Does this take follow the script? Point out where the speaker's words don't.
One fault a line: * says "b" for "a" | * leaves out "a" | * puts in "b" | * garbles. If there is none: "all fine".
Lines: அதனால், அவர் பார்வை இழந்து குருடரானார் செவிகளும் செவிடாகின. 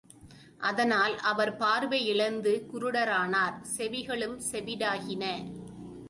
all fine